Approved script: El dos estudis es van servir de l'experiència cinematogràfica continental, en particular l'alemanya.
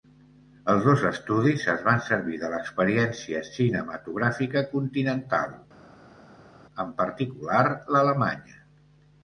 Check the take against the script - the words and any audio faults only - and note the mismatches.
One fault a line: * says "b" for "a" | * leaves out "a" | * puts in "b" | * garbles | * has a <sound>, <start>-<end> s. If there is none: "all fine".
* says "Els" for "El"